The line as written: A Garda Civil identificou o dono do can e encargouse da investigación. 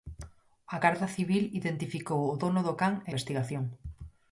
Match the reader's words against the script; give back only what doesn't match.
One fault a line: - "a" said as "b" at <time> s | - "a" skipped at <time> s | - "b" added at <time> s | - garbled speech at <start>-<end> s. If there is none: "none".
- "encargouse da" skipped at 3.1 s